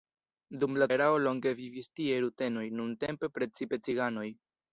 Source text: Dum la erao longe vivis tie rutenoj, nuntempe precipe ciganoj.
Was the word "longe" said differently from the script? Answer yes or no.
no